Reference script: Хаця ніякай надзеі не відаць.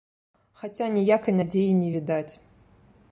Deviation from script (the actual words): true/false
false